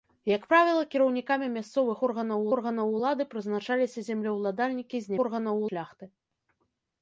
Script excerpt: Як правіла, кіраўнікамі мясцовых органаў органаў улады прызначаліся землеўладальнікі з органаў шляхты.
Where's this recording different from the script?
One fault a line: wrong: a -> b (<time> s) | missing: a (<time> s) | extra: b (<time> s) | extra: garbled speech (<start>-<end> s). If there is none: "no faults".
no faults